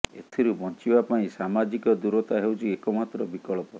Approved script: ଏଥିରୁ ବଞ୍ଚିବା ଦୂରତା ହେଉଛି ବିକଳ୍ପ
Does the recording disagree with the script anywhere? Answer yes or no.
yes